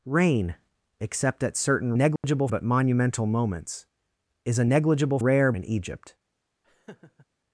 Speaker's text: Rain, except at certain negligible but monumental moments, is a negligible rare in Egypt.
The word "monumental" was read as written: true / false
true